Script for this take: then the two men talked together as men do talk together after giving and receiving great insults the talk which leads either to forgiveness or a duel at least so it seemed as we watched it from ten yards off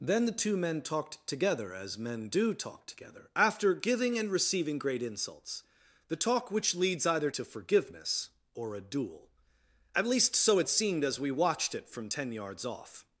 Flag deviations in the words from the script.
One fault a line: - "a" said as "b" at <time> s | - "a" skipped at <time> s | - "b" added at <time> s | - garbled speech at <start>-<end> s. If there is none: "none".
none